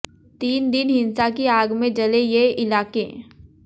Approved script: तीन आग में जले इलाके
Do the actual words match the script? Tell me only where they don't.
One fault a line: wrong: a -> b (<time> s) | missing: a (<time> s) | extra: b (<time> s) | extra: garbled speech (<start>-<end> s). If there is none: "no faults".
extra: दिन हिंसा की (0.7 s)
extra: ये (2.2 s)